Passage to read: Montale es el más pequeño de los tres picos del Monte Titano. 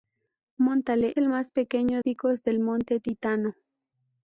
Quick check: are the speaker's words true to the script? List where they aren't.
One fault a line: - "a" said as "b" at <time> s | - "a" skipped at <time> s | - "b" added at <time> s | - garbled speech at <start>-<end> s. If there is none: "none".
- "es" skipped at 1.1 s
- "de los tres" skipped at 2.0 s